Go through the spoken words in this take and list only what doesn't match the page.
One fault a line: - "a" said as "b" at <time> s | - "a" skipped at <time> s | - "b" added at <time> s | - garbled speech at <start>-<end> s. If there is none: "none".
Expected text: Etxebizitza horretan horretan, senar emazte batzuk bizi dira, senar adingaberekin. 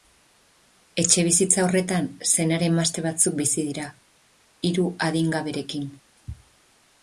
- "horretan" skipped at 2.1 s
- "senar" said as "hiru" at 4.7 s